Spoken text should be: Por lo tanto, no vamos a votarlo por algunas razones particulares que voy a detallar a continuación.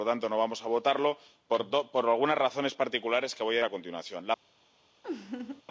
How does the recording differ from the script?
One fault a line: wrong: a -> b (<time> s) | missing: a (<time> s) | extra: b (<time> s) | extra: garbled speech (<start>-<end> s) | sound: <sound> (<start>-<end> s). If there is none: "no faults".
missing: detallar (3.6 s)
sound: laugh (5.0-5.6 s)